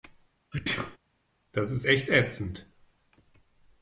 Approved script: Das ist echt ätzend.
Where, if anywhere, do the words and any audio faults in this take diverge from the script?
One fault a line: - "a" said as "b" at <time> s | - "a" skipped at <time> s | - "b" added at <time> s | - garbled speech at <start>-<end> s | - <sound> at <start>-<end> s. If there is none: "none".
- sneeze at 0.5-1.0 s